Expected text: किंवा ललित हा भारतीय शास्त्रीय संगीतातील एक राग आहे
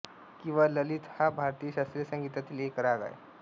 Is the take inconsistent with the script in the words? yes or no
no